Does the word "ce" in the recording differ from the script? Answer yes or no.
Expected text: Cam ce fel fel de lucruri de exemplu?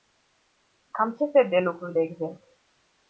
no